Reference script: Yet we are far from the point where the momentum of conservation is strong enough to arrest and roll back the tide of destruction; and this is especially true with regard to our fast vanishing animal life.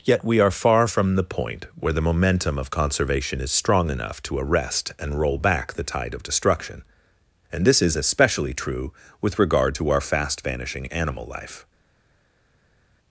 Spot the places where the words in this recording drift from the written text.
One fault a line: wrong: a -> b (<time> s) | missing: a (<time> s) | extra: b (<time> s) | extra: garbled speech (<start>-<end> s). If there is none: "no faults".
no faults